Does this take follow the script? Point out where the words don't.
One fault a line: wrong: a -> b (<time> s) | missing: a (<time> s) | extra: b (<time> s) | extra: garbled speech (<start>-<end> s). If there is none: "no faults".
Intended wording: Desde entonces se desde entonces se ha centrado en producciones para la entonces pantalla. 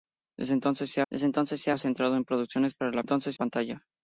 no faults